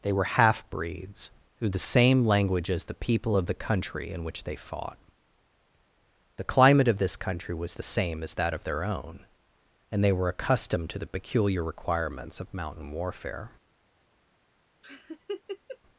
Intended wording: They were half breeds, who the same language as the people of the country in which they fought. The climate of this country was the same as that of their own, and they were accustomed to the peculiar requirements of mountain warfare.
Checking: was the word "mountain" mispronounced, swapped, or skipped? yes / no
no